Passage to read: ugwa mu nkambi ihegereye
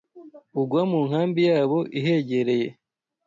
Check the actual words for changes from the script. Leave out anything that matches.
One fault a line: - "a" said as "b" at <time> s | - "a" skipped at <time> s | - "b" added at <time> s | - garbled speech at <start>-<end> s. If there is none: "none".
- "yabo" added at 1.5 s